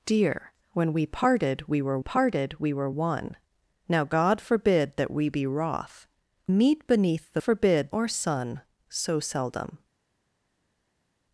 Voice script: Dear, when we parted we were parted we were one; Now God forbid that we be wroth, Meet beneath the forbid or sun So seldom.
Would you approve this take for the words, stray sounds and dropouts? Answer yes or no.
yes